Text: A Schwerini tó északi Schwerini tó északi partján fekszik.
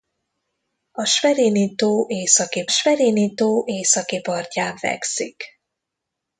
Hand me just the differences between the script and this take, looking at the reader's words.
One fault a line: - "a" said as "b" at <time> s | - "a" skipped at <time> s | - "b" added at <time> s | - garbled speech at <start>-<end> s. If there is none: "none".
none